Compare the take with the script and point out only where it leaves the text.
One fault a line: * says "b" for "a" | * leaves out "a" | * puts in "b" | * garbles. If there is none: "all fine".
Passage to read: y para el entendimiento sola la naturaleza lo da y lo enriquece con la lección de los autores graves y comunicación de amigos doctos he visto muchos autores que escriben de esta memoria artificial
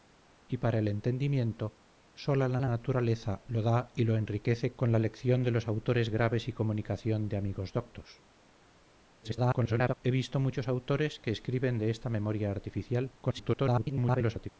* puts in "la"
* garbles
* garbles